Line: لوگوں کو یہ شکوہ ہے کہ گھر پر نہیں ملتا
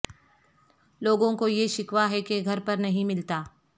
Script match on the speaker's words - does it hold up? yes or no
yes